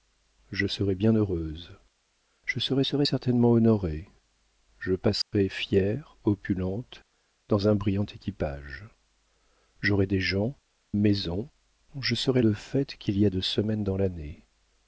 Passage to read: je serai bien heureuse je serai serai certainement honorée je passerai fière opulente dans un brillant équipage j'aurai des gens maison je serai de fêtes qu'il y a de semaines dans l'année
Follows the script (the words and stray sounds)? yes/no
no